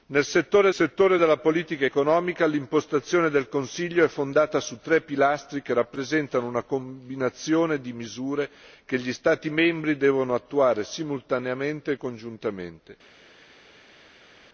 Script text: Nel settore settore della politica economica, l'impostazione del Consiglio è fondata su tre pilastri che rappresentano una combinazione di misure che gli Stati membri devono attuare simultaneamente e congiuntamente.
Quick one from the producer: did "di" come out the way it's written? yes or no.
yes